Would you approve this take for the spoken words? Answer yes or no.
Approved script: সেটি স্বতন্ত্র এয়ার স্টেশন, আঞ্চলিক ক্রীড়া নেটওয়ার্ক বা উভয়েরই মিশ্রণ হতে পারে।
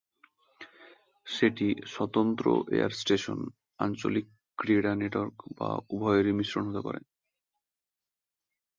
yes